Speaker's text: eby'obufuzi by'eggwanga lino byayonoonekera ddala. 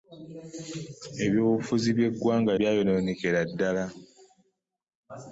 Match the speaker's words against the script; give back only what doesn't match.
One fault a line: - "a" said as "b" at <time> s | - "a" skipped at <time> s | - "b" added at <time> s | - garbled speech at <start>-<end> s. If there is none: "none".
- "lino" skipped at 2.5 s